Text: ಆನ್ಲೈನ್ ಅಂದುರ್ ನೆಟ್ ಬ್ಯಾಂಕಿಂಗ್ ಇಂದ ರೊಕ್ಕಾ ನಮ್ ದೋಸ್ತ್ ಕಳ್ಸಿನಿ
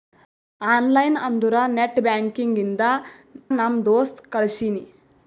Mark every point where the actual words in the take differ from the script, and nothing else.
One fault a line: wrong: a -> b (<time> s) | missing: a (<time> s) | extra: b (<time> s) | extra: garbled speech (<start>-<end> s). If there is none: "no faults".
missing: ರೊಕ್ಕಾ (2.8 s)